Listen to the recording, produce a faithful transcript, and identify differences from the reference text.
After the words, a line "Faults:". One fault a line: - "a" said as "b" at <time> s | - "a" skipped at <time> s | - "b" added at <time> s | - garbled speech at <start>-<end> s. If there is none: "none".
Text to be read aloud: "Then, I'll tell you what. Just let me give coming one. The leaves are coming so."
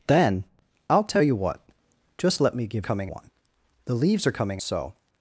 "Then, I'll tell you what. Just let me give coming one. The leaves are coming so."
Faults:
none